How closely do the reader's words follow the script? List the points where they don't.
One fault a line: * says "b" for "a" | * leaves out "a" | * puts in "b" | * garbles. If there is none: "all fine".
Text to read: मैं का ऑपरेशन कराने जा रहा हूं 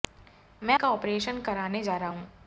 all fine